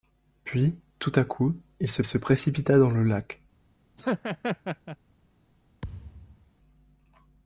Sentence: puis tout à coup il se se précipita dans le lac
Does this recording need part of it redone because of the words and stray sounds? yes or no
yes